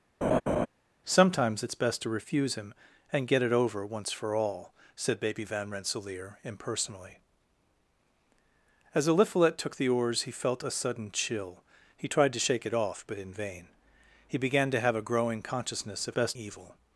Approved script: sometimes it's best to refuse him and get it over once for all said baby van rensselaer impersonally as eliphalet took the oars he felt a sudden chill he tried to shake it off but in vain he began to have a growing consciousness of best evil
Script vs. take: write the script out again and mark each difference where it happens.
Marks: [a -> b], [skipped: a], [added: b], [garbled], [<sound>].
[laugh] sometimes it's best to refuse him and get it over once for all said baby van rensselaer impersonally as eliphalet took the oars he felt a sudden chill he tried to shake it off but in vain he began to have a growing consciousness of best evil